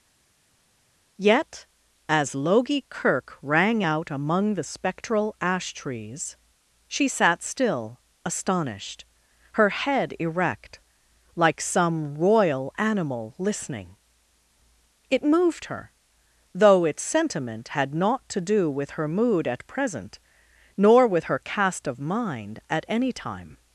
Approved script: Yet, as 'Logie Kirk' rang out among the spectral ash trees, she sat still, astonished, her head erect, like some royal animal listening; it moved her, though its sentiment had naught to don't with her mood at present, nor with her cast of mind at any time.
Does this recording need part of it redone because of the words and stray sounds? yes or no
yes